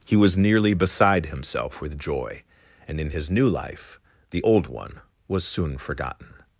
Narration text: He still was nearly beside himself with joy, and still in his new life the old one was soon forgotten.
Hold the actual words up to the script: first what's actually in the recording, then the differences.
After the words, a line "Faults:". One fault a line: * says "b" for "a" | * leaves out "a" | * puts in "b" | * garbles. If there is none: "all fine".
He was nearly beside himself with joy, and in his new life the old one was soon forgotten.
Faults:
* leaves out "still"
* leaves out "still"